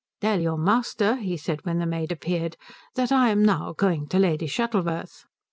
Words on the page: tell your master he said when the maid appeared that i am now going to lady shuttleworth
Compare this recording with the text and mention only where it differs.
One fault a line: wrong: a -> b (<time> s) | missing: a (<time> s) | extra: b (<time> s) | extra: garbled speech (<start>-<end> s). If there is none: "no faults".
no faults